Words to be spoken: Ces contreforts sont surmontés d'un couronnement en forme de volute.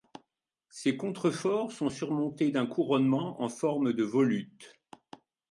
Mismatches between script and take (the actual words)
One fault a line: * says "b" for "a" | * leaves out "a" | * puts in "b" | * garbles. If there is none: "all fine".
all fine